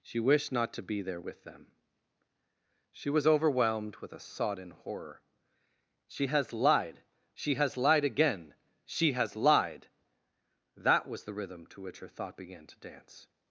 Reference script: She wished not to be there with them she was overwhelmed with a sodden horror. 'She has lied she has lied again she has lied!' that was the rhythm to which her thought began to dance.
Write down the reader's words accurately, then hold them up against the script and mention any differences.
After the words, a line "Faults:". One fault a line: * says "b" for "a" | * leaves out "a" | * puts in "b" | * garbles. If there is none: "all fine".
She wished not to be there with them she was overwhelmed with a sodden horror. 'She has lied she has lied again she has lied!' that was the rhythm to which her thought began to dance.
Faults:
all fine